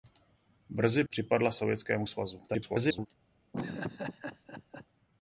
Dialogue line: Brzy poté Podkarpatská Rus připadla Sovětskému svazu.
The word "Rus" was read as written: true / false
false